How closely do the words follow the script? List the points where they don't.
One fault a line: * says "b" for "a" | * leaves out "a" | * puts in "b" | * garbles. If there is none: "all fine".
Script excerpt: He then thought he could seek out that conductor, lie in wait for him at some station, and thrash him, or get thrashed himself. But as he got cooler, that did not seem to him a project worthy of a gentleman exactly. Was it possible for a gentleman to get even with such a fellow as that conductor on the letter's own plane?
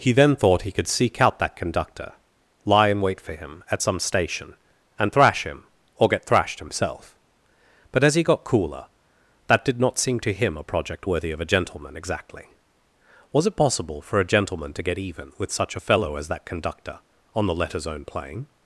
all fine